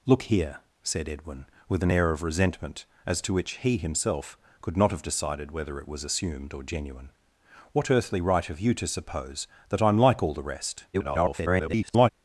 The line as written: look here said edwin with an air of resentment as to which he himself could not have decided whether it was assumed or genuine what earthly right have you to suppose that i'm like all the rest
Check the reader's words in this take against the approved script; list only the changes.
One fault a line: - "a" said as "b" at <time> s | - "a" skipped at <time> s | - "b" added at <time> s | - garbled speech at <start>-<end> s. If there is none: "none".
- garbled speech at 10.9-12.1 s